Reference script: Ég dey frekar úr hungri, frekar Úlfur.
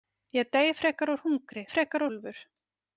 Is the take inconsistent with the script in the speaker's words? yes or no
no